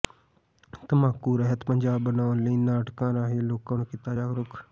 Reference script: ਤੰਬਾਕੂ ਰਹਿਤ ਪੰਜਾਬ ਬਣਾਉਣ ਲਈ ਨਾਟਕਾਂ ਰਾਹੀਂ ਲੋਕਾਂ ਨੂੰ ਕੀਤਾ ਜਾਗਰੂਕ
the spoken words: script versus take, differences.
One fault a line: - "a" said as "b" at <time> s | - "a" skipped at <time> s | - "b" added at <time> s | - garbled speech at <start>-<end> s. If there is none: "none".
none